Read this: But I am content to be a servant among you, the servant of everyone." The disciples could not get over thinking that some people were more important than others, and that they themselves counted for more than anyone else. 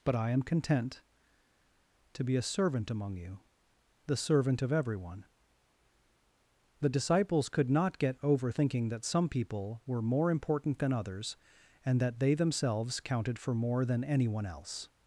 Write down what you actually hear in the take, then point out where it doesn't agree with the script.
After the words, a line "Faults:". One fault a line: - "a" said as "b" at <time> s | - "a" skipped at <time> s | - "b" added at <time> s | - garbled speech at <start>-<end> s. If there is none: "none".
But I am content to be a servant among you, the servant of everyone." The disciples could not get over thinking that some people were more important than others, and that they themselves counted for more than anyone else.
Faults:
none